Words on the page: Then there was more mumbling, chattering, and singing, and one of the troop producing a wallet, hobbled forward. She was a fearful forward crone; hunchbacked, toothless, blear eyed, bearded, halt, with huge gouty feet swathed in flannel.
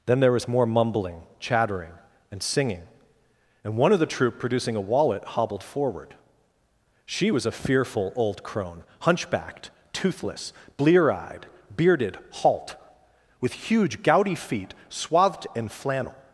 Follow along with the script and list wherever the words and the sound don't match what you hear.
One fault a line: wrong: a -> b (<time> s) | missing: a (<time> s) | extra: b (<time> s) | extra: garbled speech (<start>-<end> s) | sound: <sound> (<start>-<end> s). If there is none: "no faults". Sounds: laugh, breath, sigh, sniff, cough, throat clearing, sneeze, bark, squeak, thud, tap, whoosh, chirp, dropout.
wrong: forward -> old (8.1 s)